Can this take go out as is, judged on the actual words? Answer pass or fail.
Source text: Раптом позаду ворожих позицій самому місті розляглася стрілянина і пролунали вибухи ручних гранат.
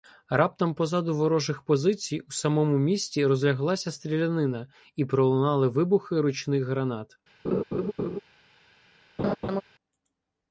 fail